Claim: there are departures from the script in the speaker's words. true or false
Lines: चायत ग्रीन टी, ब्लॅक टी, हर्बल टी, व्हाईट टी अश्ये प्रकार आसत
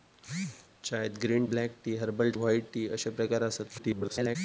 true